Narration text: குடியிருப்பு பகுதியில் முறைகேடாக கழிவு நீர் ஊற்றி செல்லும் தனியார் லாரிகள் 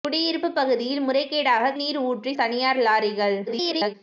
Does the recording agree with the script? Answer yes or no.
no